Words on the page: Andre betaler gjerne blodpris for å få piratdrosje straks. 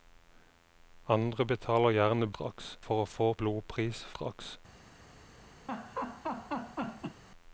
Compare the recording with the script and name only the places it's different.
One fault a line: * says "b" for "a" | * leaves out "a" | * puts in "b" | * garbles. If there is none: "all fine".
* says "straks" for "blodpris"
* says "blodpris" for "piratdrosje"